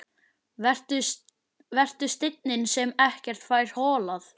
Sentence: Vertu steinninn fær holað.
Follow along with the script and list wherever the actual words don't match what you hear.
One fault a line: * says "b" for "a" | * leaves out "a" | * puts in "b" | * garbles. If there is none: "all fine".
* puts in "sem ekkert"